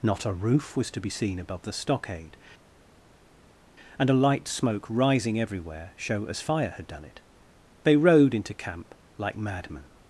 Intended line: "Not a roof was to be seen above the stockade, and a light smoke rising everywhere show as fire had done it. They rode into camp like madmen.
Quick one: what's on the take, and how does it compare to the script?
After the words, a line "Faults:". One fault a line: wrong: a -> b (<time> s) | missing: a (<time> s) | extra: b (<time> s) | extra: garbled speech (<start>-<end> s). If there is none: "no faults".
"Not a roof was to be seen above the stockade, and a light smoke rising everywhere show as fire had done it. They rode into camp like madmen.
Faults:
no faults